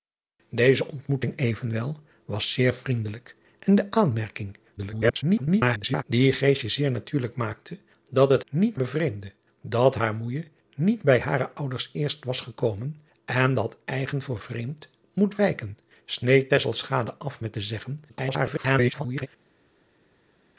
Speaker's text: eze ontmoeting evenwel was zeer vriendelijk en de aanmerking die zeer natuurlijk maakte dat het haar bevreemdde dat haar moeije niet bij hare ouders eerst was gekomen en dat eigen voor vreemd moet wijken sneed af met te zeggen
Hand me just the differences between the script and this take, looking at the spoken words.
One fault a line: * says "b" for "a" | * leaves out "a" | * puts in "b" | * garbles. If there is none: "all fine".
* garbles
* says "niet" for "haar"
* garbles